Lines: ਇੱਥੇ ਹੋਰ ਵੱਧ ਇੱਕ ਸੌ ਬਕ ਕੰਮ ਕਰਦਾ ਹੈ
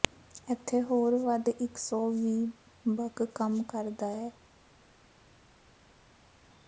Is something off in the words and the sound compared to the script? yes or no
yes